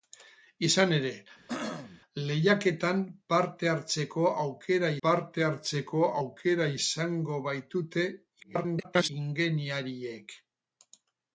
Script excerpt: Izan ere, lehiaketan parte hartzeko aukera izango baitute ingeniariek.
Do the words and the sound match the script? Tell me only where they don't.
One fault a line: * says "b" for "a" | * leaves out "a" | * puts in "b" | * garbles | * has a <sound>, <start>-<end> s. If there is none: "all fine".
* has a throat clearing, 1.5-2.0 s
* puts in "parte hartzeko aukera"
* garbles